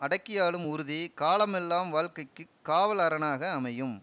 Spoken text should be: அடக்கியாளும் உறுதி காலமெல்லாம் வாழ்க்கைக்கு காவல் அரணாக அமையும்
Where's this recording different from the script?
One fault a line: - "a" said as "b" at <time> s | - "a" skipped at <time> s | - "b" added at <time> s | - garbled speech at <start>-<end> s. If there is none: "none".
none